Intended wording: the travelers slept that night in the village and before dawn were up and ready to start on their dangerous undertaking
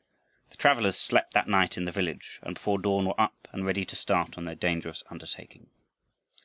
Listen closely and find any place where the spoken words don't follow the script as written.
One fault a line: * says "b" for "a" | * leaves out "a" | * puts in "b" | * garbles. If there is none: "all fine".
all fine